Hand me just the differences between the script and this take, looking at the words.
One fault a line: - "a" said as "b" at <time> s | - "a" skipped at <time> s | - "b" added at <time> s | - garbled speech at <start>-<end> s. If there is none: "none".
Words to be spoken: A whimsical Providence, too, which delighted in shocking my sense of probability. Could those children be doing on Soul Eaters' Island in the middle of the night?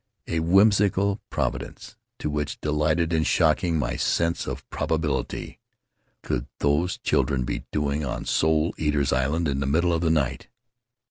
none